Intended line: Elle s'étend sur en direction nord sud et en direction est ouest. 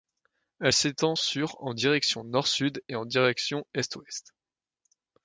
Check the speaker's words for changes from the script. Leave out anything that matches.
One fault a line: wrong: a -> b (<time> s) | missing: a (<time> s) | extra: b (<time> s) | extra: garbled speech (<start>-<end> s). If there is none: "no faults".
no faults